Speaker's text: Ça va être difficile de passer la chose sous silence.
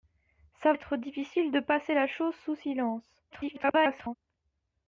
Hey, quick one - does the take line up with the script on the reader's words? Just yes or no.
no